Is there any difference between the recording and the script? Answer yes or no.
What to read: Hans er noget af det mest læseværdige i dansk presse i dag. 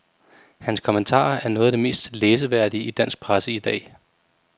yes